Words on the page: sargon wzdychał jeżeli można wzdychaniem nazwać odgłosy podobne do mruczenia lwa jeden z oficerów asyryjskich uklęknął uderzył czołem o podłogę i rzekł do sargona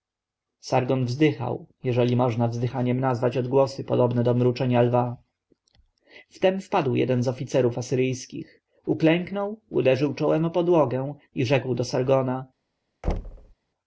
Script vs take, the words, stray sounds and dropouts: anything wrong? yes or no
yes